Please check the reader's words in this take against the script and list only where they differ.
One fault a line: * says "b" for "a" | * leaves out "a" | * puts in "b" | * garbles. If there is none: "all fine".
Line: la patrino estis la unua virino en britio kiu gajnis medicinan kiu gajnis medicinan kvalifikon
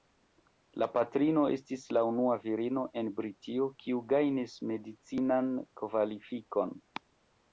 * leaves out "kiu gajnis medicinan"